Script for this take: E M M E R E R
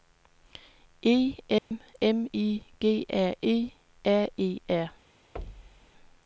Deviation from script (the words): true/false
true